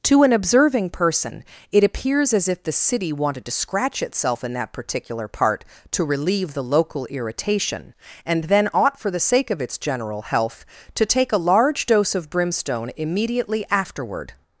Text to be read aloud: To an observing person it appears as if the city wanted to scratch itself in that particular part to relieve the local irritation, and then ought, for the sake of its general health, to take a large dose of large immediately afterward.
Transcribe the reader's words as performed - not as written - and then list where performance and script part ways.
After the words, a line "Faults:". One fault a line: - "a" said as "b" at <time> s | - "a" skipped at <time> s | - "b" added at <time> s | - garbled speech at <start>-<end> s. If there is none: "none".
To an observing person it appears as if the city wanted to scratch itself in that particular part to relieve the local irritation, and then ought, for the sake of its general health, to take a large dose of brimstone immediately afterward.
Faults:
- "large" said as "brimstone" at 12.3 s